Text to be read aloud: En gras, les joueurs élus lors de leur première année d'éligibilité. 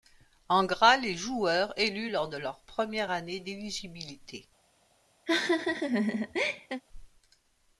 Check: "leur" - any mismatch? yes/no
no